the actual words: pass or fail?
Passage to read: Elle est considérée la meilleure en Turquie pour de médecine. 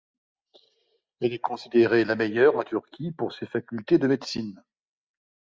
fail